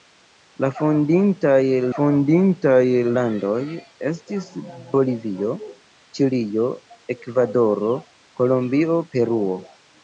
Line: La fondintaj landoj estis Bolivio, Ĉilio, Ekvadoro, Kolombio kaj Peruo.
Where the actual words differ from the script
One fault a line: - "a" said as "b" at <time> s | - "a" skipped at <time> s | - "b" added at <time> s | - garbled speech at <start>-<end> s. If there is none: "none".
- "fondintaj" added at 1.9 s
- "kaj" skipped at 9.0 s